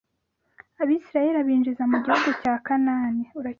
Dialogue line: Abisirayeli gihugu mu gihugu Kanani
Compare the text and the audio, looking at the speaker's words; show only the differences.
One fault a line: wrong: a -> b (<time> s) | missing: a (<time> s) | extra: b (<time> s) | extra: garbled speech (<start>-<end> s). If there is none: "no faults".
wrong: gihugu -> abinjiza (1.4 s)
extra: cya (2.4 s)